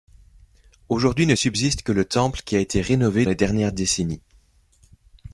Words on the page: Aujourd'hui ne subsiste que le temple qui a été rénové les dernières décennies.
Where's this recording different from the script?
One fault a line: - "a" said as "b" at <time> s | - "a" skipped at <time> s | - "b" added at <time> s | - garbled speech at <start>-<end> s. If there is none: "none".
none